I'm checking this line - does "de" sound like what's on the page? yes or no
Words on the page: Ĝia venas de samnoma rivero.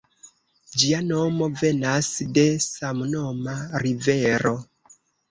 yes